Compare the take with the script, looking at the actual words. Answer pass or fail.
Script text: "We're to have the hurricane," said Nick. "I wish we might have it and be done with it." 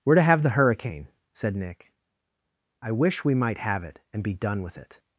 pass